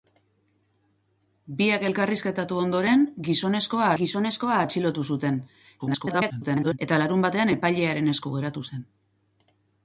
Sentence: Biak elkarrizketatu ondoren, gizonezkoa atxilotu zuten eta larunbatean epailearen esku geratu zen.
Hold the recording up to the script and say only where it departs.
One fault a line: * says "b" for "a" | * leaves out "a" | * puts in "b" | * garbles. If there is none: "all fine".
* puts in "gizonezkoa"
* garbles